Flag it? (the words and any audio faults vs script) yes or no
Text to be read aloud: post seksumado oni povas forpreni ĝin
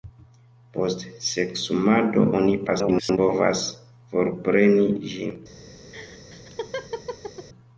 yes